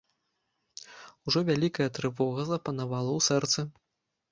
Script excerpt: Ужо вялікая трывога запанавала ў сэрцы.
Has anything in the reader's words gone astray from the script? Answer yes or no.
no